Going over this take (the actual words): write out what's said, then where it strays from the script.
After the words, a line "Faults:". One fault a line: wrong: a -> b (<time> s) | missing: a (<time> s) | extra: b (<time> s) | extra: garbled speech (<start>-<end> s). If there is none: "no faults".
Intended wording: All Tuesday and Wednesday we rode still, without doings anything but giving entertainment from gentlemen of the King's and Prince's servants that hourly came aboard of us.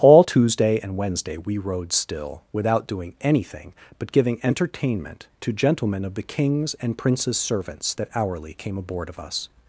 All Tuesday and Wednesday we rode still, without doing anything but giving entertainment to gentlemen of the King's and Prince's servants that hourly came aboard of us.
Faults:
wrong: doings -> doing (2.9 s)
wrong: from -> to (5.4 s)